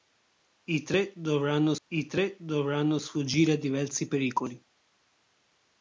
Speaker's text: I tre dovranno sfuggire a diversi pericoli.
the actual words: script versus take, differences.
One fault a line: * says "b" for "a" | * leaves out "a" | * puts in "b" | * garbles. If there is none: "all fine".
* puts in "I tre dovranno"